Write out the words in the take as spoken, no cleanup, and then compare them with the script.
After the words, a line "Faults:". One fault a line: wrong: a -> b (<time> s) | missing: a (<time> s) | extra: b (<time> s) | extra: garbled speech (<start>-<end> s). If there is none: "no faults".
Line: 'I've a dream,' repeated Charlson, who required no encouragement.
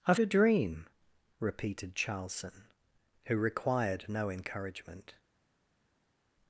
'I've a dream,' repeated Charlson, who required no encouragement.
Faults:
no faults